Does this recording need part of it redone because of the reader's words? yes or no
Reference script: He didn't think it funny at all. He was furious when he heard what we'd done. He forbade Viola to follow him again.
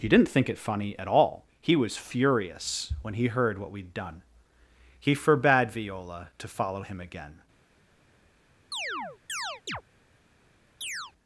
no